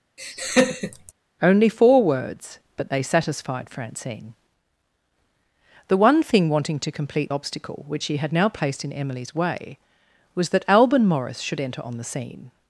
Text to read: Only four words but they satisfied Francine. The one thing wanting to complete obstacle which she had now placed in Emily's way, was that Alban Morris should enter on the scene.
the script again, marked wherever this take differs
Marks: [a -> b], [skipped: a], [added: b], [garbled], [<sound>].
[laugh] Only four words but they satisfied Francine. The one thing wanting to complete obstacle which she had now placed in Emily's way, was that Alban Morris should enter on the scene.